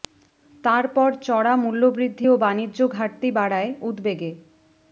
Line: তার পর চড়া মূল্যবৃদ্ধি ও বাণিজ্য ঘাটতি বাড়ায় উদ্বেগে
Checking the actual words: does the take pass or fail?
pass